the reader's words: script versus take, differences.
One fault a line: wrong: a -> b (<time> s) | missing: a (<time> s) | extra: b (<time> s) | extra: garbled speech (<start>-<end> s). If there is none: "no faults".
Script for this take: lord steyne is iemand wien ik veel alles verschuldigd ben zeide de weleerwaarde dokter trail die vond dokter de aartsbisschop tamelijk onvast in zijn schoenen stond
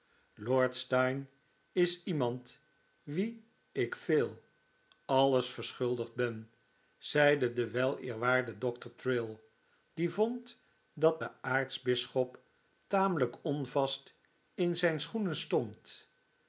wrong: dokter -> dat (10.9 s)